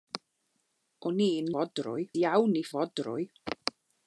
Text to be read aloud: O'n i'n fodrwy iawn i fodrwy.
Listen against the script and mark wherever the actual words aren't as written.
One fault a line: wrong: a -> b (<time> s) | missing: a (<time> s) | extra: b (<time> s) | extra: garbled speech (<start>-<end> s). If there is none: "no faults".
no faults